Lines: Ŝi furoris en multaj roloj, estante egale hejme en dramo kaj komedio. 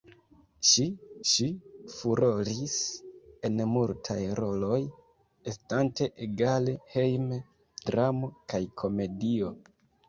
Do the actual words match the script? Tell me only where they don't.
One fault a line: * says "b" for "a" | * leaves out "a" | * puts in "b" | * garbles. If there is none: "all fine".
* puts in "ŝi"
* leaves out "en"